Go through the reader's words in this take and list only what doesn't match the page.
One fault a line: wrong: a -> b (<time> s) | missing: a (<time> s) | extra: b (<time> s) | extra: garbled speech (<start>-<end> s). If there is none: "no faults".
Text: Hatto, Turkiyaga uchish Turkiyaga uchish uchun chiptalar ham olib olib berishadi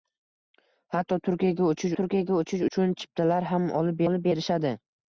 no faults